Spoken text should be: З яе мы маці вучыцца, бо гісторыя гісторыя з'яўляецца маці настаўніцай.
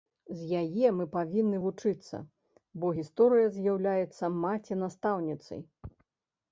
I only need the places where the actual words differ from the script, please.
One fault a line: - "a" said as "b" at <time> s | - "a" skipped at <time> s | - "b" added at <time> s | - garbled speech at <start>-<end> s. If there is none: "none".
- "маці" said as "павінны" at 1.1 s
- "гісторыя" skipped at 3.5 s